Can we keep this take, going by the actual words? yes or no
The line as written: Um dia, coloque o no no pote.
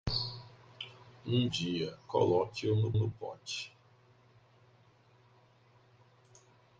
yes